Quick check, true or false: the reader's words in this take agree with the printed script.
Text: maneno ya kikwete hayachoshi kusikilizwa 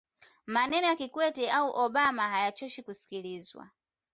false